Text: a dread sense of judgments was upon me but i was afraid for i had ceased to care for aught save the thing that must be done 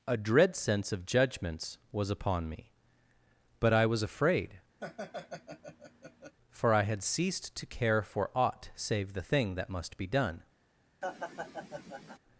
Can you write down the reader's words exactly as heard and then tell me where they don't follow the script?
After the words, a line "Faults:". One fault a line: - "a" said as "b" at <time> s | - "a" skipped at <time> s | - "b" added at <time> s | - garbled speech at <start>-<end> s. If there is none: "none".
a dread sense of judgments was upon me but i was afraid for i had ceased to care for aught save the thing that must be done
Faults:
none